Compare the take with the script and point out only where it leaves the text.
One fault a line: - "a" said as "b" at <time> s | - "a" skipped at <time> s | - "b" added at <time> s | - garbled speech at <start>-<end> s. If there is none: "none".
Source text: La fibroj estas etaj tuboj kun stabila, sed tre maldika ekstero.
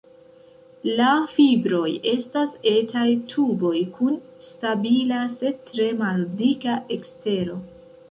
none